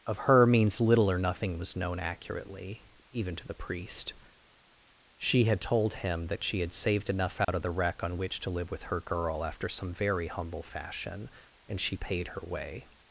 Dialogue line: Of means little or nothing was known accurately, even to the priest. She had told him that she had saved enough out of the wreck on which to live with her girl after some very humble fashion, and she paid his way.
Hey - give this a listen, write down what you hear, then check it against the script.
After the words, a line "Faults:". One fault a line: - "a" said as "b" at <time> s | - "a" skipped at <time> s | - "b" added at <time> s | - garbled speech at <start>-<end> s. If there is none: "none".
Of her means little or nothing was known accurately, even to the priest. She had told him that she had saved enough out of the wreck on which to live with her girl after some very humble fashion, and she paid her way.
Faults:
- "her" added at 0.2 s
- "his" said as "her" at 12.3 s